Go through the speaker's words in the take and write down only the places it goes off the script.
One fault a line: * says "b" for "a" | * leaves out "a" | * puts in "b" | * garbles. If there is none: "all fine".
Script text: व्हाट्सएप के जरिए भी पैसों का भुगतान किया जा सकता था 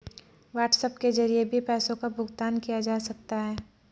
* says "है" for "था"